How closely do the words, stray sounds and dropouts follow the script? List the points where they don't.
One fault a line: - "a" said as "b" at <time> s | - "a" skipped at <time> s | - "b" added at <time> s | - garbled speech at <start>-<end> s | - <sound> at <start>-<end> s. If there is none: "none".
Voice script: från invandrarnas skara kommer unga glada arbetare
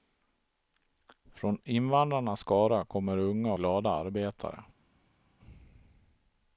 none